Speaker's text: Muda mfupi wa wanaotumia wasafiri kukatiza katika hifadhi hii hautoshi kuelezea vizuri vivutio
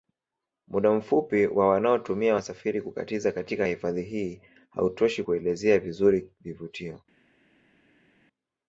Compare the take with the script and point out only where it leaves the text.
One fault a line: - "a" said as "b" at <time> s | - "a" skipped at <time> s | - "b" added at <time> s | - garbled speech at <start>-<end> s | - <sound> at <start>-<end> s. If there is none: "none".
none